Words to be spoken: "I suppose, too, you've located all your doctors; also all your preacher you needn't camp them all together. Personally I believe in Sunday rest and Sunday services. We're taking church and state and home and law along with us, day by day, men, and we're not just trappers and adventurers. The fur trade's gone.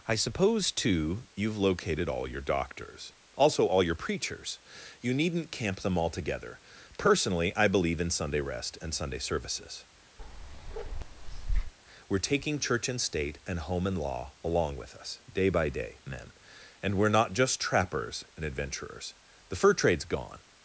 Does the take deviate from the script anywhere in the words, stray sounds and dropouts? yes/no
yes